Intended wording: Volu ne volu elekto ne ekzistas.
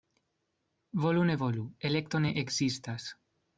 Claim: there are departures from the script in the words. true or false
false